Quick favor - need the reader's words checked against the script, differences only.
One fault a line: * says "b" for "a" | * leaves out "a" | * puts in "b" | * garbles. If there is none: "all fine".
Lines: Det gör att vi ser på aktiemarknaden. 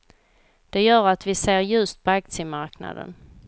* puts in "ljust"